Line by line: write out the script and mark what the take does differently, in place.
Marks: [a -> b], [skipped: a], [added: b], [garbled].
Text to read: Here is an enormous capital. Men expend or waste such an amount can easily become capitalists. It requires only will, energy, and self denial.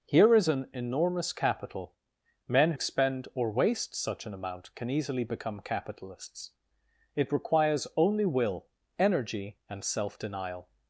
Here is an enormous capital. Men expend or waste such an amount can easily become capitalists. It requires only will, energy, and self denial.